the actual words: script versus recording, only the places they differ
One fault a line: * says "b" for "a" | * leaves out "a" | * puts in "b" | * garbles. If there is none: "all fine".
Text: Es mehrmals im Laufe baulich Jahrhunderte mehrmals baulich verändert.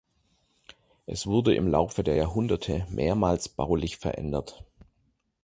* says "wurde" for "mehrmals"
* says "der" for "baulich"